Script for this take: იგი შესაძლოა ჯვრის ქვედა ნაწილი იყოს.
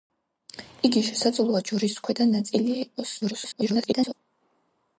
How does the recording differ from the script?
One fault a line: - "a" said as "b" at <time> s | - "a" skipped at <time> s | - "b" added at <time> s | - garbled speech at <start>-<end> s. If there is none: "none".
- garbled speech at 3.2-4.1 s